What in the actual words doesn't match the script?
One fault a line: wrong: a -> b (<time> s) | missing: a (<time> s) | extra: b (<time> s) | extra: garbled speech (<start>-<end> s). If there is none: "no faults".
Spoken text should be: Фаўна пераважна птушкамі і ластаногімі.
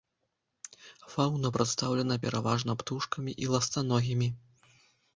extra: прадстаўлена (1.6 s)